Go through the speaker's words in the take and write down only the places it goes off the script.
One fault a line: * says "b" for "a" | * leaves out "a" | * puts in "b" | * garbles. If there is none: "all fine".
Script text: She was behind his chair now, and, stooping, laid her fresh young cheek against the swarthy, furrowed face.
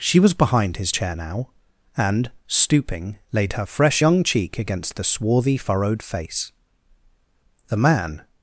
* puts in "The man"